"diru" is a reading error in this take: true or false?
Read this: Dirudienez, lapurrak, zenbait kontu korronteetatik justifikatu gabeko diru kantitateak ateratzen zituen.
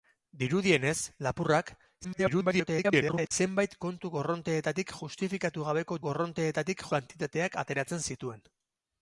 true